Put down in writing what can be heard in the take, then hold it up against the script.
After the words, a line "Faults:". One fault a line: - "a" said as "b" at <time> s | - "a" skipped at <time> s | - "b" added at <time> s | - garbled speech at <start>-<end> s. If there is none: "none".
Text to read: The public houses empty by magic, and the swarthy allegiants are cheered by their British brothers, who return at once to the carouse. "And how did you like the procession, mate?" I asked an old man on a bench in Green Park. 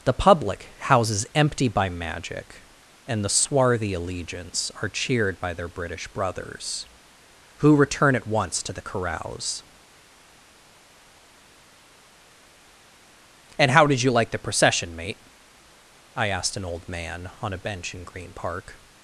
The public houses empty by magic, and the swarthy allegiants are cheered by their British brothers, who return at once to the carouse. "And how did you like the procession, mate?" I asked an old man on a bench in Green Park.
Faults:
none